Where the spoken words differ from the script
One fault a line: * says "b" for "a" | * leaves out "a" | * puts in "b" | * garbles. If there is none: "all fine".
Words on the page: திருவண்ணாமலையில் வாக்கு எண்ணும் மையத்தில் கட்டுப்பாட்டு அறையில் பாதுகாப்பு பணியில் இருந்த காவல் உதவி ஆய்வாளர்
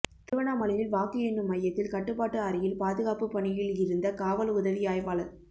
all fine